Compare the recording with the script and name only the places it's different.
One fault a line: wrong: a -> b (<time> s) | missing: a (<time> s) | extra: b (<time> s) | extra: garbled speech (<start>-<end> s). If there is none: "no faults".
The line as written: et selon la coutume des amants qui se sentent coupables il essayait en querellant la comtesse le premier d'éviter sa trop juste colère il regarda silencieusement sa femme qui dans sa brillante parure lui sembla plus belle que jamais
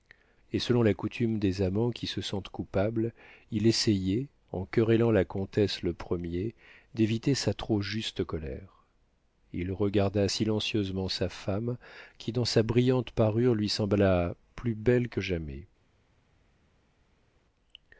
no faults